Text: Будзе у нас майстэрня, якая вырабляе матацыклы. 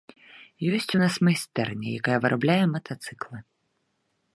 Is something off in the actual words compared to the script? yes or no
yes